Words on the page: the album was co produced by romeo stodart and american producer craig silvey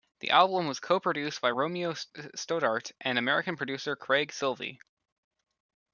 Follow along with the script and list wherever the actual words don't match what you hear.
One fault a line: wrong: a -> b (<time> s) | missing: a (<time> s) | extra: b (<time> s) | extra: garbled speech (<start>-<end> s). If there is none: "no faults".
no faults